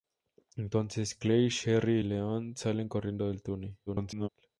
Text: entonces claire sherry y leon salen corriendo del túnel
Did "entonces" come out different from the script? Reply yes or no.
no